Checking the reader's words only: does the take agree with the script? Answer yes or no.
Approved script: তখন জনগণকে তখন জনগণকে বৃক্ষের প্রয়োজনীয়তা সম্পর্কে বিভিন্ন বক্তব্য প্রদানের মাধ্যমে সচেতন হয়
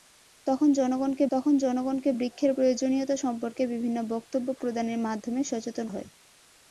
yes